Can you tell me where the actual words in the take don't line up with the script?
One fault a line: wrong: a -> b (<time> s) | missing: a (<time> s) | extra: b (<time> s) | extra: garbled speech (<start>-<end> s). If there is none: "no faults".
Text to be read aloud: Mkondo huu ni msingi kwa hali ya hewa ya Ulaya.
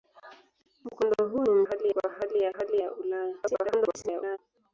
wrong: msingi -> hali (1.6 s)
wrong: hewa -> hali (2.5 s)
extra: garbled speech (3.4-4.4 s)